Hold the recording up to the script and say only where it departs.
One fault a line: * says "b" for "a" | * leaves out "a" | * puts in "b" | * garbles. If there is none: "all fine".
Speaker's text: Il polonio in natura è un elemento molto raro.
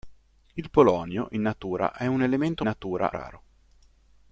* says "natura" for "molto"